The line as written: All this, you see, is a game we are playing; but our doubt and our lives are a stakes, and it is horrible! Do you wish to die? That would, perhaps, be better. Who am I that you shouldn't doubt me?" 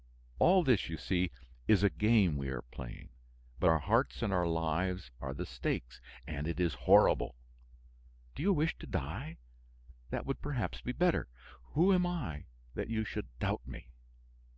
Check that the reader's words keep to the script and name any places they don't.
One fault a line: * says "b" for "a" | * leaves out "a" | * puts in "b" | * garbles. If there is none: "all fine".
* says "hearts" for "doubt"
* says "the" for "a"
* says "should" for "shouldn't"